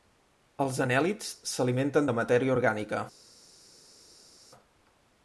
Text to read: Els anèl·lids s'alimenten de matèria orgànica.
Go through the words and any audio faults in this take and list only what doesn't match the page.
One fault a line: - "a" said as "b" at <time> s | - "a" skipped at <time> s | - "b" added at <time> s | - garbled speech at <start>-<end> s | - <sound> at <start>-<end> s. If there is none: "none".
none